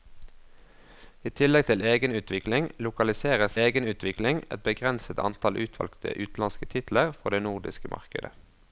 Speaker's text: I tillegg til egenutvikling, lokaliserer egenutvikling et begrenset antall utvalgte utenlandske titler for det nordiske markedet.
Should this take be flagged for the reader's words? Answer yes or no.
no